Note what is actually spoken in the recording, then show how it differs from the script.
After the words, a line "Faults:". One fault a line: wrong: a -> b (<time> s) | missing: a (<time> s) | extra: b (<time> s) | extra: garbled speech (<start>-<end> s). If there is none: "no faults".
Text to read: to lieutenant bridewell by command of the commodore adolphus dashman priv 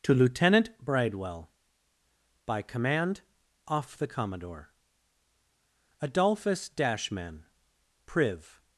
to lieutenant bridewell by command off the commodore adolphus dashman priv
Faults:
wrong: of -> off (3.7 s)